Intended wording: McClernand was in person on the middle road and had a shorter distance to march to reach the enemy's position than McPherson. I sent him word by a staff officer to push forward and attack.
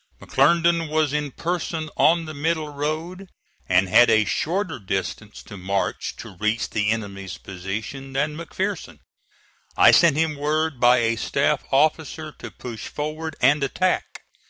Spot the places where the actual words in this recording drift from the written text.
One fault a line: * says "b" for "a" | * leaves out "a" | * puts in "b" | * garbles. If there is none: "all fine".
all fine